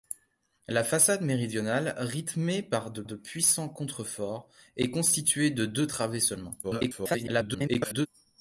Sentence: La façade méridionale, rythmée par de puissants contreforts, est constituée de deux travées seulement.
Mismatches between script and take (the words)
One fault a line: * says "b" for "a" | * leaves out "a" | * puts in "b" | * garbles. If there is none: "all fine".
* puts in "de"
* garbles